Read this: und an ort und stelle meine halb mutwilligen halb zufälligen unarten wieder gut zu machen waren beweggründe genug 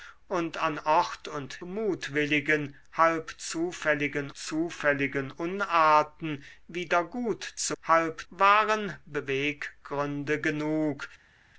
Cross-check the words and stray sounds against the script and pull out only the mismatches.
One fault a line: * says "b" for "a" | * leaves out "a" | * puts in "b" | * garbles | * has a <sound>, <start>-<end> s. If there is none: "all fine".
* leaves out "stelle meine halb"
* puts in "zufälligen"
* says "halb" for "machen"